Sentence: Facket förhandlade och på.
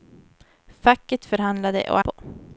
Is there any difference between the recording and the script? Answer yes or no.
no